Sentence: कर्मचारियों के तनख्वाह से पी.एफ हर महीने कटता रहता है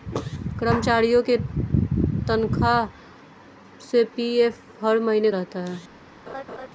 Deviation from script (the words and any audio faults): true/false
true